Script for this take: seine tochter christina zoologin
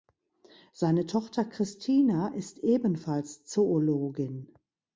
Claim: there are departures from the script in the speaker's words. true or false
true